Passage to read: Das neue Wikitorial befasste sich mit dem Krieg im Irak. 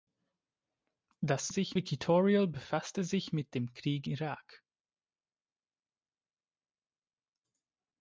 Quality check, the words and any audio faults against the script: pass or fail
fail